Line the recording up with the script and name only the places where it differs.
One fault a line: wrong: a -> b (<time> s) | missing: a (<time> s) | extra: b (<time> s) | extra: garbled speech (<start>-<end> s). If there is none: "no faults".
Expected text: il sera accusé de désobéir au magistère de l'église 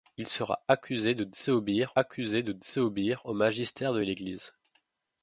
extra: accusé de désobéir (1.9 s)